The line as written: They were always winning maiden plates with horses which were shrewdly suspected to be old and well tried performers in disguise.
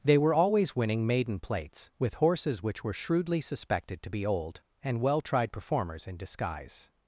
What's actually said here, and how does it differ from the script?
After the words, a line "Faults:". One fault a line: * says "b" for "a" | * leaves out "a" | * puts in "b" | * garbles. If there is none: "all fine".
They were always winning maiden plates with horses which were shrewdly suspected to be old and well tried performers in disguise.
Faults:
all fine